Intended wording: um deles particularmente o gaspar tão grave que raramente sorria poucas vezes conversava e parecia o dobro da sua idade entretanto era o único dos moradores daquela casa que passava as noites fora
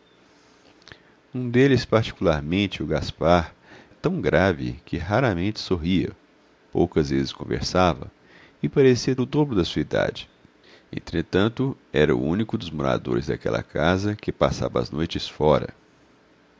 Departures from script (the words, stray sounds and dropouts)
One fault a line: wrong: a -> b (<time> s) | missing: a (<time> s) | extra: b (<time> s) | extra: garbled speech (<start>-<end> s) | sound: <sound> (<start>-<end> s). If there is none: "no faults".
no faults